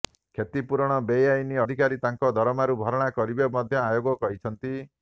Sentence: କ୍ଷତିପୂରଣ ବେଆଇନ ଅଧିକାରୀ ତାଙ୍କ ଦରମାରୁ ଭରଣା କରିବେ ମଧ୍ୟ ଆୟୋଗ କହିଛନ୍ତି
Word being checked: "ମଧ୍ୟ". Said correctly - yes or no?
yes